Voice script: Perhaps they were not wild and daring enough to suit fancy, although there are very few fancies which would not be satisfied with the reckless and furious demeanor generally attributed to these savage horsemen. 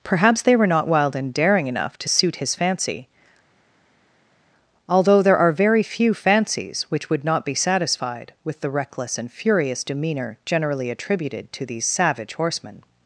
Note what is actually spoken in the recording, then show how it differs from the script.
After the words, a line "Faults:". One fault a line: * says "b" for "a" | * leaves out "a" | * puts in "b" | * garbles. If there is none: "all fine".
Perhaps they were not wild and daring enough to suit his fancy, although there are very few fancies which would not be satisfied with the reckless and furious demeanor generally attributed to these savage horsemen.
Faults:
* puts in "his"